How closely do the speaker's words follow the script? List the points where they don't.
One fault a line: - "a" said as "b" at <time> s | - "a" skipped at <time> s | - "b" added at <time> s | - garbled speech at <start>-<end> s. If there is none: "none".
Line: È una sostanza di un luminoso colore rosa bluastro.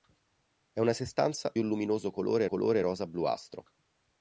- "di" skipped at 1.5 s
- "colore" added at 2.4 s